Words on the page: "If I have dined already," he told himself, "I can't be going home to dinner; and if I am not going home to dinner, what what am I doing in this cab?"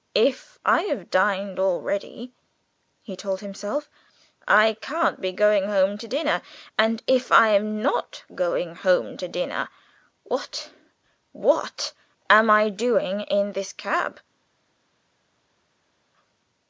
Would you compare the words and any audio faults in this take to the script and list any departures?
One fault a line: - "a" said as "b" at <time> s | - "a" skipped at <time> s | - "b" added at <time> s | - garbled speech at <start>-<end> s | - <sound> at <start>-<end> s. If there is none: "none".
none